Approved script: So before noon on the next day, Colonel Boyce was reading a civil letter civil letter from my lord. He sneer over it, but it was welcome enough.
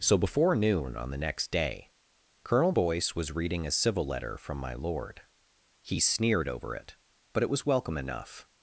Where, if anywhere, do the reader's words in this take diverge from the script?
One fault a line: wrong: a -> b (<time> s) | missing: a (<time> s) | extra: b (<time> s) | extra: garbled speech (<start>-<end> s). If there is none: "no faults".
missing: civil letter (4.4 s)
wrong: sneer -> sneered (6.0 s)